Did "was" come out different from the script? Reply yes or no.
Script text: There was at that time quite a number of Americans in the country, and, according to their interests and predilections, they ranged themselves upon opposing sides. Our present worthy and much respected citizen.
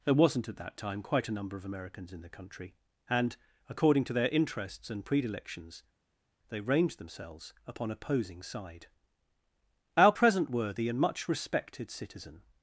yes